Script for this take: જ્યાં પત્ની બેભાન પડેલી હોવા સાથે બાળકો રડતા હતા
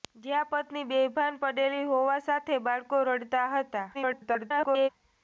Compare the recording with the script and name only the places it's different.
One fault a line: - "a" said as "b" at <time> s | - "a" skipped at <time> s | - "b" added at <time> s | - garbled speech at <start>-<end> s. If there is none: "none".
- garbled speech at 3.9-4.9 s